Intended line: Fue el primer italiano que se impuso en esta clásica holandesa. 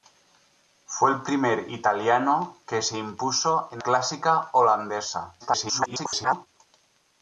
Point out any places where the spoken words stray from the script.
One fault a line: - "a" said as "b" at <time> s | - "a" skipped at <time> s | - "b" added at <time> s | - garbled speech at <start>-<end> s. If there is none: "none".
- "esta" skipped at 3.8 s
- garbled speech at 5.4-6.5 s